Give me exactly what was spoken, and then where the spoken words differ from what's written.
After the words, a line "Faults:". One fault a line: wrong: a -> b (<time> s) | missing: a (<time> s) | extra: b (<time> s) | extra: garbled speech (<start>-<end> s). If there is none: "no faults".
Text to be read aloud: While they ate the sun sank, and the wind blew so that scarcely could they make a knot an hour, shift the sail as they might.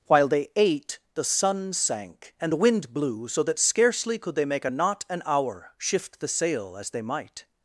While they ate the sun sank, and the wind blew so that scarcely could they make a knot an hour, shift the sail as they might.
Faults:
no faults